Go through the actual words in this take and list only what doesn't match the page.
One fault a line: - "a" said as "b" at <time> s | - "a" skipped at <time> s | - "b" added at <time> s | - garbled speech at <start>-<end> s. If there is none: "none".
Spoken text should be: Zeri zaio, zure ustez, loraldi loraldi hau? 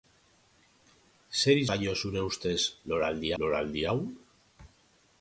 none